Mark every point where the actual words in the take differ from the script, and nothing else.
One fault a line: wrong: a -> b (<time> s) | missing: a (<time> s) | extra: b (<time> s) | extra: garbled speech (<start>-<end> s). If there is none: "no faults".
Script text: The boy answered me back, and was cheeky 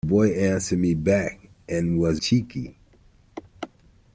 no faults